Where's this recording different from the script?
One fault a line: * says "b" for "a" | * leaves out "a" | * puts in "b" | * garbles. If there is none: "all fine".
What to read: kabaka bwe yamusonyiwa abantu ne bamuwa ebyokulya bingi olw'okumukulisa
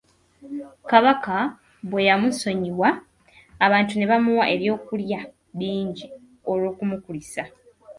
all fine